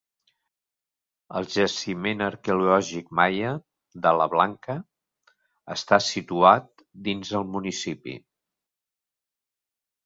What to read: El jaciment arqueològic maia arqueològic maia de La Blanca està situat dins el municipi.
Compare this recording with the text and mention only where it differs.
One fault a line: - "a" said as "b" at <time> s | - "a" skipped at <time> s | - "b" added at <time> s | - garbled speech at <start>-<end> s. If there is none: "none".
- "arqueològic maia" skipped at 3.5 s